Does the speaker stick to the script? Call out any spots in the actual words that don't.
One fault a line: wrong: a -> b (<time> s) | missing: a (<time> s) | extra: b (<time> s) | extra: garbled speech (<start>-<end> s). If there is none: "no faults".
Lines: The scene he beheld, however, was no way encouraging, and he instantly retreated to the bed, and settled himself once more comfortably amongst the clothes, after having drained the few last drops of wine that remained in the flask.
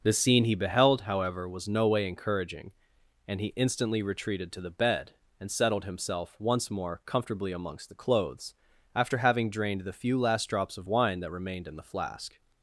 no faults